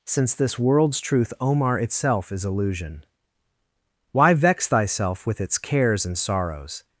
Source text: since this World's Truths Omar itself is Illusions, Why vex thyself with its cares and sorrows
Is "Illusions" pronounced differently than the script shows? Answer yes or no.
yes